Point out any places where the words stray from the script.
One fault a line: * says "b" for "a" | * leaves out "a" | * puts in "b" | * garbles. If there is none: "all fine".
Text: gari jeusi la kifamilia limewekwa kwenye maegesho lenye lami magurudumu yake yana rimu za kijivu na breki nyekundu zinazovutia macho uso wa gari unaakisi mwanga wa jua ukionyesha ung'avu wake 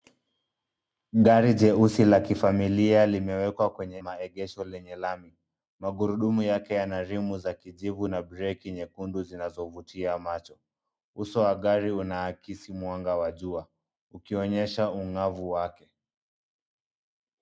all fine